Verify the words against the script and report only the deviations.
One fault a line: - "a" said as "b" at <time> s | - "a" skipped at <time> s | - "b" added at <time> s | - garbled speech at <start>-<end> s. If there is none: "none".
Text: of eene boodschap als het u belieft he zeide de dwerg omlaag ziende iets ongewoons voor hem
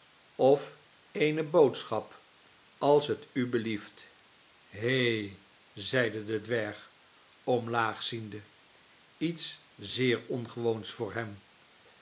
- "zeer" added at 9.8 s